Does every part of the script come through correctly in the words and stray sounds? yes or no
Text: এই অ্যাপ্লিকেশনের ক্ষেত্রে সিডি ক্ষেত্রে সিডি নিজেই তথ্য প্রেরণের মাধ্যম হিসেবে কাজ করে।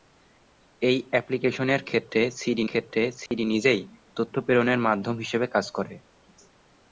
no